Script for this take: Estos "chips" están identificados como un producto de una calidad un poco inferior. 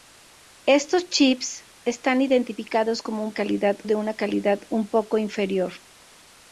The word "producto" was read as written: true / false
false